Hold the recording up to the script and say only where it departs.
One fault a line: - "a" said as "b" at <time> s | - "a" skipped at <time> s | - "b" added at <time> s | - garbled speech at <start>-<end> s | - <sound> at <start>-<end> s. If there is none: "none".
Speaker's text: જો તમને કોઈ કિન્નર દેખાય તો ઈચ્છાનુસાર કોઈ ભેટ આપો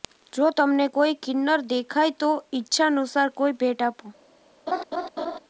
- laugh at 4.7-5.4 s